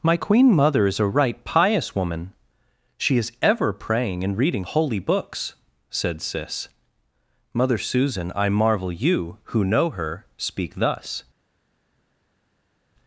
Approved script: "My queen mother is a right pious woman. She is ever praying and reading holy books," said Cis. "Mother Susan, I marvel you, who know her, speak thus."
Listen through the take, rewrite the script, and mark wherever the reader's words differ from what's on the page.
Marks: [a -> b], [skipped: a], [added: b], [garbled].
"My queen mother is a right pious woman. She is ever praying and reading holy books," said Cis. "Mother Susan, I marvel you, who know her, speak thus."